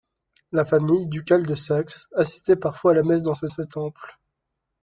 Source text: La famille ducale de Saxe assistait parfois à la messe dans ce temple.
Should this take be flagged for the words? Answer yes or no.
yes